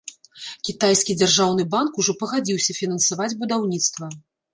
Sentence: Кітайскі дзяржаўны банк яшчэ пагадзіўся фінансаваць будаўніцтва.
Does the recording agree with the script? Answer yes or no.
no